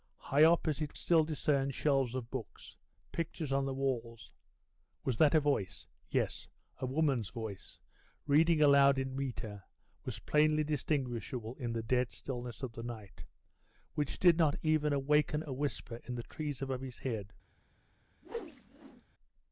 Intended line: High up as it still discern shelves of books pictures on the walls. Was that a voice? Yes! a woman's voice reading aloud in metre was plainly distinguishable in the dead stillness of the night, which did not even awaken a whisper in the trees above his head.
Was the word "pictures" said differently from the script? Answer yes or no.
no